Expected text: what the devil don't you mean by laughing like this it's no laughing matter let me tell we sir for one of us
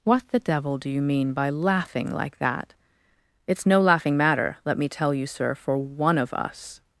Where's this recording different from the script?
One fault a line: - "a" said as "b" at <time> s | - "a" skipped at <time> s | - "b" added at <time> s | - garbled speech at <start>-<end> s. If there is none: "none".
- "don't" said as "do" at 0.8 s
- "this" said as "that" at 2.4 s
- "we" said as "you" at 5.1 s